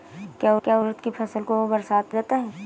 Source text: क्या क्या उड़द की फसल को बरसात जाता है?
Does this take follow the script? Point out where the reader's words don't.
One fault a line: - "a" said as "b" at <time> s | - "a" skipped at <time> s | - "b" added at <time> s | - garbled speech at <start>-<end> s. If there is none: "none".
none